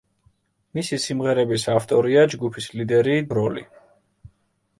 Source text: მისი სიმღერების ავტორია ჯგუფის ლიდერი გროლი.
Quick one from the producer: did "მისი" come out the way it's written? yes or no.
yes